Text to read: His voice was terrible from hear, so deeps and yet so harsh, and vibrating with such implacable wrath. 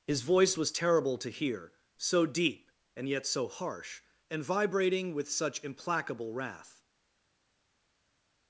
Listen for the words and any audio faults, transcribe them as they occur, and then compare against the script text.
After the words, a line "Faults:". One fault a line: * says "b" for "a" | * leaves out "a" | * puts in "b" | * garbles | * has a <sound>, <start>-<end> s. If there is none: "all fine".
His voice was terrible to hear, so deep and yet so harsh, and vibrating with such implacable wrath.
Faults:
* says "to" for "from"
* says "deep" for "deeps"